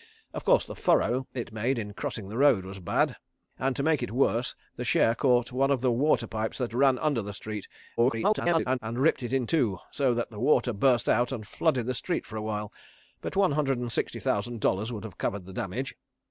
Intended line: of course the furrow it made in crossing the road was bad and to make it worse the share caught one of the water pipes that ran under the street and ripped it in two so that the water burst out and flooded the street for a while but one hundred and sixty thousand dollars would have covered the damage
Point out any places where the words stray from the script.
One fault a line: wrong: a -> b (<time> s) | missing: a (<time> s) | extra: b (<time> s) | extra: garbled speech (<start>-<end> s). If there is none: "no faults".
extra: garbled speech (8.0-8.8 s)